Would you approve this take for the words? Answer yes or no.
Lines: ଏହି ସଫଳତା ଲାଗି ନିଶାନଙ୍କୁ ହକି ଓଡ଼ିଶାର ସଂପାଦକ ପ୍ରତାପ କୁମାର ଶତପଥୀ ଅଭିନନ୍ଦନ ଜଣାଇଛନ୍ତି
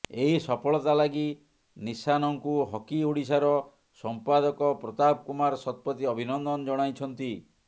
yes